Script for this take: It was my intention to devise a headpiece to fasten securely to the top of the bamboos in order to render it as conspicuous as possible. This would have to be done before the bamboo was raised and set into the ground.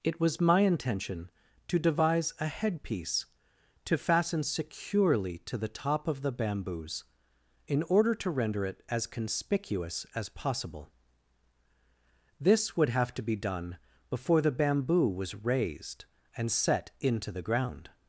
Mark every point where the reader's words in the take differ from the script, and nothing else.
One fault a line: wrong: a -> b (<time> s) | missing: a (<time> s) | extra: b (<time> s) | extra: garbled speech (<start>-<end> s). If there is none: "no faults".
no faults